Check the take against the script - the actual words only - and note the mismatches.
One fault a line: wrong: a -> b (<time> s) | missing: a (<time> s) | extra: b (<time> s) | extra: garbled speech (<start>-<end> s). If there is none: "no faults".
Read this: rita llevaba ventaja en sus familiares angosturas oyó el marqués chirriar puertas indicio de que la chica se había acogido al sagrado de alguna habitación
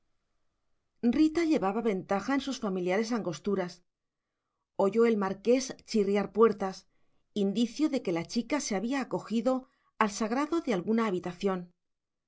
no faults